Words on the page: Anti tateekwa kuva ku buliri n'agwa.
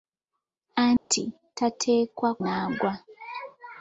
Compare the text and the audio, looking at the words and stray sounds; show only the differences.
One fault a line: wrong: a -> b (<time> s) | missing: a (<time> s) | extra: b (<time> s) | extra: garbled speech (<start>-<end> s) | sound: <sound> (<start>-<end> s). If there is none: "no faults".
sound: dropout (1.0-1.1 s)
missing: kuva ku buliri (2.3 s)